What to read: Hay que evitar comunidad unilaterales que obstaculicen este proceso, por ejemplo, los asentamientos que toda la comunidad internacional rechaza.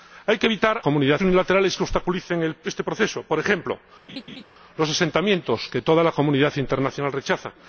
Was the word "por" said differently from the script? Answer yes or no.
no